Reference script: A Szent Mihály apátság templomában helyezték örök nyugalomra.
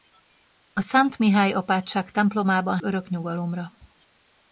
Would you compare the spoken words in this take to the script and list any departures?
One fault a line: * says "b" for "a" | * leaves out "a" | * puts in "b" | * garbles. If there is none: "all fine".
* leaves out "helyezték"